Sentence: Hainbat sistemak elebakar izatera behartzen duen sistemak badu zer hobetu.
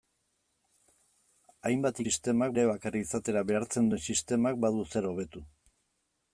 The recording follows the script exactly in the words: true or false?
true